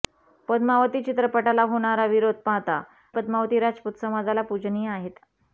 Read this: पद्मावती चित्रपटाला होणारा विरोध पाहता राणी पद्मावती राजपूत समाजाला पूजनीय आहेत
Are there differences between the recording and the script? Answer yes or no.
yes